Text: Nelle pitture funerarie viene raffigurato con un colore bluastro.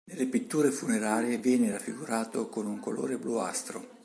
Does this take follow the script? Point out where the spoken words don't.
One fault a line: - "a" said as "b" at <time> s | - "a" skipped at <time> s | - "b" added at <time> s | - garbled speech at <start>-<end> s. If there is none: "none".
none